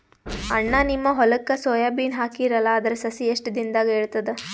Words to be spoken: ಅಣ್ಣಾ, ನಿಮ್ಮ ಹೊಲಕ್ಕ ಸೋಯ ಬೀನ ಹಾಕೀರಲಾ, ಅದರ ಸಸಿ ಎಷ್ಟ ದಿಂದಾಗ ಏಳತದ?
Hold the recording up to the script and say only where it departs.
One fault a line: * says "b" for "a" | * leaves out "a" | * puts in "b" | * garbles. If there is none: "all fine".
all fine